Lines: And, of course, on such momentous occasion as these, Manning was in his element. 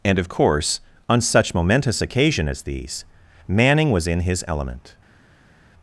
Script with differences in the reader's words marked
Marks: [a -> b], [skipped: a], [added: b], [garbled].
And, of course, on such momentous occasion as these, Manning was in his element.